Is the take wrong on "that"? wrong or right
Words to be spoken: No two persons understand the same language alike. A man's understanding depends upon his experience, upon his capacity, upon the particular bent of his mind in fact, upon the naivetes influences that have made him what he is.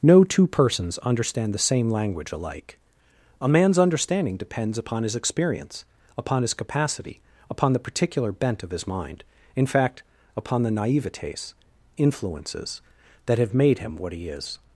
right